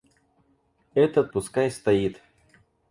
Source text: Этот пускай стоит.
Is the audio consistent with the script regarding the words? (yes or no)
yes